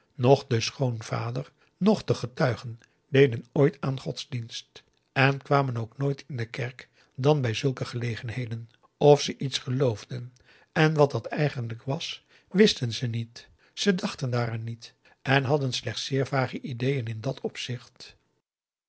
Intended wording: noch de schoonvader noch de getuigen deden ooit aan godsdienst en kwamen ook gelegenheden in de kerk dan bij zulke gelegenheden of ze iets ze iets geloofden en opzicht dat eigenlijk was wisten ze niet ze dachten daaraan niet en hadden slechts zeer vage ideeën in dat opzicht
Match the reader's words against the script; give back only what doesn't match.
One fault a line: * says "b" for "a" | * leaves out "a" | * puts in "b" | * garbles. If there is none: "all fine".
* says "nooit" for "gelegenheden"
* leaves out "ze iets"
* says "wat" for "opzicht"